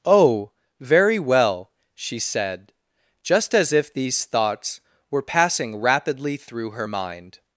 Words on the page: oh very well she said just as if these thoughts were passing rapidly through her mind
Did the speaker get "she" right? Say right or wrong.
right